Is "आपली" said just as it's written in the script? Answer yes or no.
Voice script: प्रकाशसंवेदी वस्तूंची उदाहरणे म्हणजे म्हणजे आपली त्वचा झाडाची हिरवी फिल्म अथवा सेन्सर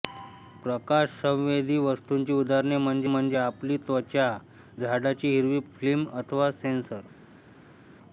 yes